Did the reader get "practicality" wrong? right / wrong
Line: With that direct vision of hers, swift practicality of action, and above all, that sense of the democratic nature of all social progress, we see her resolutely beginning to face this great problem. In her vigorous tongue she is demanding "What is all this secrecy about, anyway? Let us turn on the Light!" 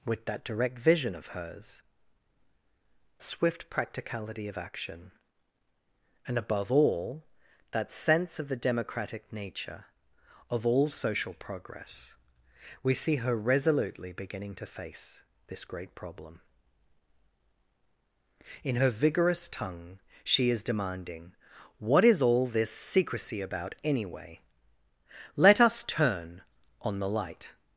right